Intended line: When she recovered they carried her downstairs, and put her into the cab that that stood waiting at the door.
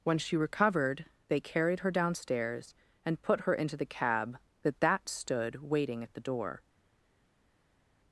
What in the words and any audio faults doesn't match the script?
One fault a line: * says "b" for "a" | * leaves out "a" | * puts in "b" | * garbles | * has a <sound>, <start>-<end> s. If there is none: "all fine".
all fine